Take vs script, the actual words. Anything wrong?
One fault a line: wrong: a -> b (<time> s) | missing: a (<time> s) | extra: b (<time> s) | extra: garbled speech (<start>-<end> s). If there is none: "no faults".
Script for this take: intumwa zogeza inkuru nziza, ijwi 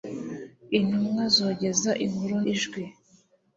missing: nziza (2.4 s)